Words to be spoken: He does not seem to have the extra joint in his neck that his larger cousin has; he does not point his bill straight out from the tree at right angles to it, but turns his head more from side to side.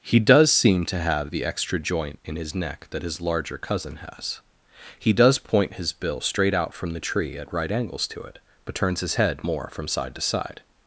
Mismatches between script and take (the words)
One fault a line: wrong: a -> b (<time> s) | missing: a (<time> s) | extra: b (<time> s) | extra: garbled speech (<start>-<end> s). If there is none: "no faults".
missing: not (0.5 s)
missing: not (5.4 s)